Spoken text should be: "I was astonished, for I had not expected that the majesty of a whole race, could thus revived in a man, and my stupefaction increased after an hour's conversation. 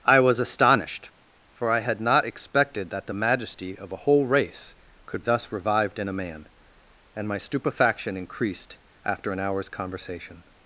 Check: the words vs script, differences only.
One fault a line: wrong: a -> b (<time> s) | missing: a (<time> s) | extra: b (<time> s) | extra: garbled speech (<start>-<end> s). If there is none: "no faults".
no faults